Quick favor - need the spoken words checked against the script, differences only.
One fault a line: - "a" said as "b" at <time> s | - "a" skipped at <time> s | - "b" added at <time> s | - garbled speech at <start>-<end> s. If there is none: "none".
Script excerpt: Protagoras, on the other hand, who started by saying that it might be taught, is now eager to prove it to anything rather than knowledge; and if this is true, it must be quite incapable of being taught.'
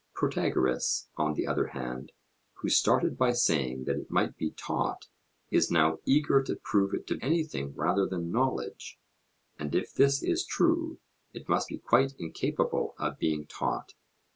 none